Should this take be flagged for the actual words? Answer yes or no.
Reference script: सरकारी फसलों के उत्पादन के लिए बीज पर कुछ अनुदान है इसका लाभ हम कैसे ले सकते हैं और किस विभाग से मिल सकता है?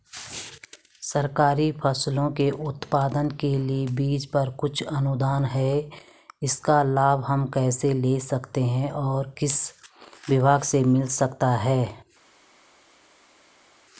no